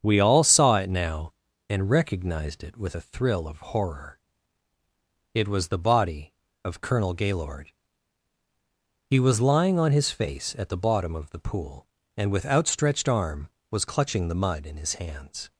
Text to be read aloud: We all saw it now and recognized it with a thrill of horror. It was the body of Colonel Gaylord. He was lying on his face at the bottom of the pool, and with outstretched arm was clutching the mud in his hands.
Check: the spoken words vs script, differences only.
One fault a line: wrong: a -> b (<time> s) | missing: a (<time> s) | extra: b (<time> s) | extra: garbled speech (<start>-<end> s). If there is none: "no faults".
no faults